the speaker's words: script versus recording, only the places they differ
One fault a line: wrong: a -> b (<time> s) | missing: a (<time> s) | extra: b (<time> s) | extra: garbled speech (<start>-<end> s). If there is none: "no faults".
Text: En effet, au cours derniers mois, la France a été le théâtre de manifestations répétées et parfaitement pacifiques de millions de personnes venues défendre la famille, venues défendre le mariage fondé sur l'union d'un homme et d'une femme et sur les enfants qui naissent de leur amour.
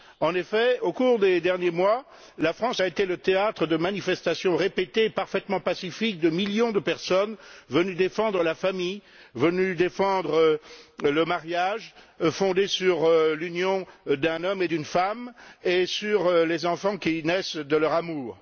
extra: des (1.2 s)